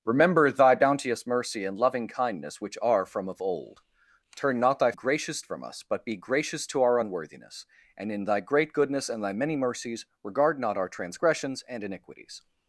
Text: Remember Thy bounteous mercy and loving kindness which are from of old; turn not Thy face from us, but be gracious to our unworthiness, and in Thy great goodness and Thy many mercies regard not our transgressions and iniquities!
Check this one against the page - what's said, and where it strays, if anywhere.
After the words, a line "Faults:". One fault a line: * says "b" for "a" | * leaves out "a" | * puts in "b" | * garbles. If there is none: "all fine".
Remember Thy bounteous mercy and loving kindness which are from of old; turn not Thy gracious from us, but be gracious to our unworthiness, and in Thy great goodness and Thy many mercies regard not our transgressions and iniquities!
Faults:
* says "gracious" for "face"